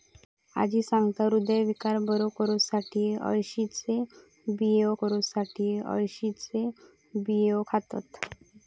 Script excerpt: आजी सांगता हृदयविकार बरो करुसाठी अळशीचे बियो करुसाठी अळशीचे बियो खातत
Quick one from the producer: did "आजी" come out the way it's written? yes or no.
yes